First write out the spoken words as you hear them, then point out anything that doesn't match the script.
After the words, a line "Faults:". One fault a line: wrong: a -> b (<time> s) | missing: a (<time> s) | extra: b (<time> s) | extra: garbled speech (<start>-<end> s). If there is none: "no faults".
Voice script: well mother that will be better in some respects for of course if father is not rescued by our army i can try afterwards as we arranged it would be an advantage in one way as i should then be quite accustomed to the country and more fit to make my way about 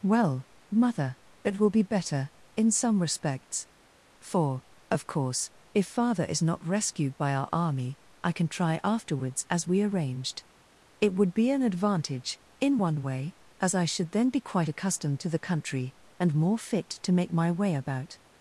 well mother it will be better in some respects for of course if father is not rescued by our army i can try afterwards as we arranged it would be an advantage in one way as i should then be quite accustomed to the country and more fit to make my way about
Faults:
wrong: that -> it (1.4 s)